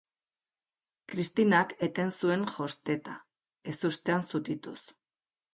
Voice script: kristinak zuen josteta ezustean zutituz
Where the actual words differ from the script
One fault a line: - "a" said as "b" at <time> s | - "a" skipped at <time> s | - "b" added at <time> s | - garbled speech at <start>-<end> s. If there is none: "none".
- "eten" added at 1.9 s